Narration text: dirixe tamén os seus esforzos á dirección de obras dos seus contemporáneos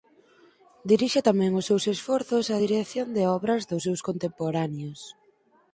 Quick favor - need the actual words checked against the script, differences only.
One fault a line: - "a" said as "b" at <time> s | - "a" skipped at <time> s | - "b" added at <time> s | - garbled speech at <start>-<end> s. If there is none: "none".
none